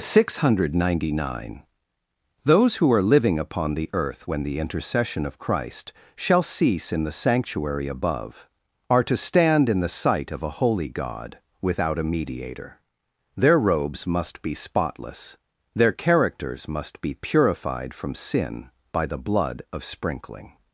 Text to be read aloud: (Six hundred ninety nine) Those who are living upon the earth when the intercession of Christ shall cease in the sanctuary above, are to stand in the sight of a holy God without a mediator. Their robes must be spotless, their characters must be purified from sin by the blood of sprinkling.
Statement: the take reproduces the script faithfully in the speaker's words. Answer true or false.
true